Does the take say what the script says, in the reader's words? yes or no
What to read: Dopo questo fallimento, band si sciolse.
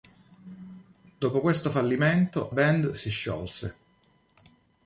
yes